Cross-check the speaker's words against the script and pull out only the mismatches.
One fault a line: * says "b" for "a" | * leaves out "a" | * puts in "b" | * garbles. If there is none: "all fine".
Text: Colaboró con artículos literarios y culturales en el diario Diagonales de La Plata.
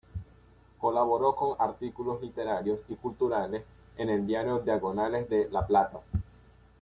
all fine